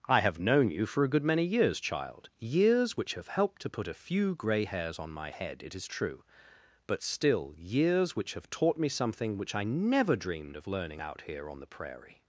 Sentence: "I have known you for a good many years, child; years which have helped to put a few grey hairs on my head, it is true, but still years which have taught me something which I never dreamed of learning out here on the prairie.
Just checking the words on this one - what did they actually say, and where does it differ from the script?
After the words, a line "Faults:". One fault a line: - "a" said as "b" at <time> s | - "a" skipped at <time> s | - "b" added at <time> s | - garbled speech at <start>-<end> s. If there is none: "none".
"I have known you for a good many years, child; years which have helped to put a few grey hairs on my head, it is true, but still years which have taught me something which I never dreamed of learning out here on the prairie.
Faults:
none